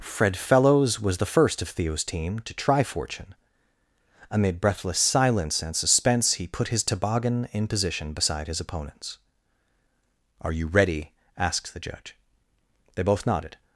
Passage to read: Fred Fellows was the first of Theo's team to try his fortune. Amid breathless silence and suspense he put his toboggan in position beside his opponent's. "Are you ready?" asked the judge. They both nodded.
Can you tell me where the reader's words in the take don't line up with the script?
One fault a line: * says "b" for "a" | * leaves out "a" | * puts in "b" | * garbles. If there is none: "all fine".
* leaves out "his"